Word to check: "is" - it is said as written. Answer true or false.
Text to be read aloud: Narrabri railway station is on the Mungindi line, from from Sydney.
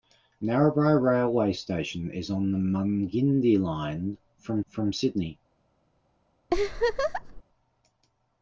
true